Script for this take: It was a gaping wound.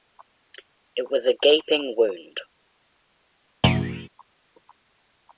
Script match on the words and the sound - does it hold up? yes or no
no